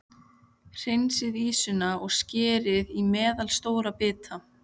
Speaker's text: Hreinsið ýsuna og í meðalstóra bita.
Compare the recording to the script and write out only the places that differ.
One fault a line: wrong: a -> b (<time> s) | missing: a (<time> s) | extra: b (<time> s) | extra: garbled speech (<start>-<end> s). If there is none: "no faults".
extra: skerið (2.2 s)